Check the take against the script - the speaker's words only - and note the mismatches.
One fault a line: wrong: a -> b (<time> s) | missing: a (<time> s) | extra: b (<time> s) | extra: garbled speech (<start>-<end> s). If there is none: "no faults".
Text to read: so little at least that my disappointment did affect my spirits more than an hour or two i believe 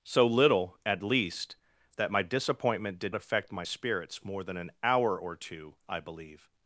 no faults